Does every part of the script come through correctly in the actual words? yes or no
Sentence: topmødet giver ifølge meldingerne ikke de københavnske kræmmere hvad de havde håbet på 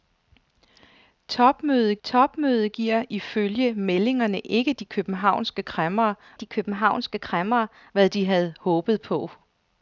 no